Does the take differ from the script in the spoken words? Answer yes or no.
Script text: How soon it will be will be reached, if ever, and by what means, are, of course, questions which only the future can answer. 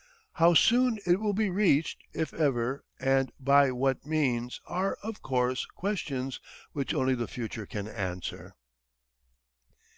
yes